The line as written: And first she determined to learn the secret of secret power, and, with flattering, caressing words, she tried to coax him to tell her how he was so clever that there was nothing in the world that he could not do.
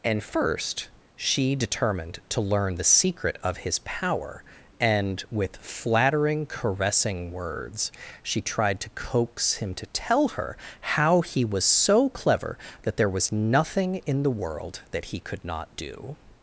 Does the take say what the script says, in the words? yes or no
no